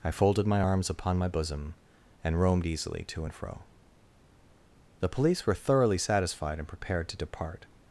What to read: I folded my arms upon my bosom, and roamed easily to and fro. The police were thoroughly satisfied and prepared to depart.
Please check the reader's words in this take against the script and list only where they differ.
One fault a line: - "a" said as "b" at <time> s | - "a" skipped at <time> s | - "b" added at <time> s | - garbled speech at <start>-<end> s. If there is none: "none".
none